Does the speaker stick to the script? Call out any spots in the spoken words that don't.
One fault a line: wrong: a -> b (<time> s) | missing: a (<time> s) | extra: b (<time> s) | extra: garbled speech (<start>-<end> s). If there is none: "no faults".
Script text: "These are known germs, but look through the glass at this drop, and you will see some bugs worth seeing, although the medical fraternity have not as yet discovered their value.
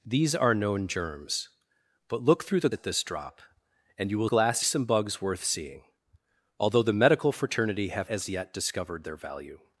missing: glass (2.7 s)
wrong: see -> glass (4.2 s)
missing: not (8.1 s)